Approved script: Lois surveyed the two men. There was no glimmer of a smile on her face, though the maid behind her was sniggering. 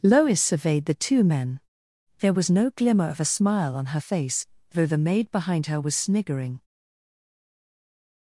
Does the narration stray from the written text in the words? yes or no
no